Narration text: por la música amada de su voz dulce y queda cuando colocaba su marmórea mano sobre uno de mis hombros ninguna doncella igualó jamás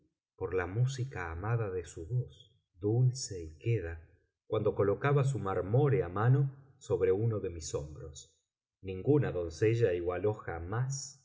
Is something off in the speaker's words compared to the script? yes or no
no